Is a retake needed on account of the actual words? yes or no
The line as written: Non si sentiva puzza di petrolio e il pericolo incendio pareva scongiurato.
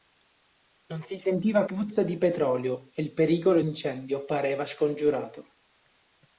no